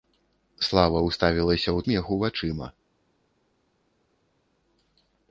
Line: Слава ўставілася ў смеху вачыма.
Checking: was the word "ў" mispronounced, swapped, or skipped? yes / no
no